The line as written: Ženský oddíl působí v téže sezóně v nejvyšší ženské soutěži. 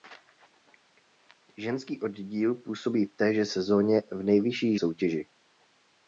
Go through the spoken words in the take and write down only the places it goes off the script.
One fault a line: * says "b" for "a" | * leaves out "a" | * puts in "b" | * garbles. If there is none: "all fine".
* leaves out "ženské"